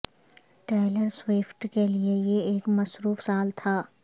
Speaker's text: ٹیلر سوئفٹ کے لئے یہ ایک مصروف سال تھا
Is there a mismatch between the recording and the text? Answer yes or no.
no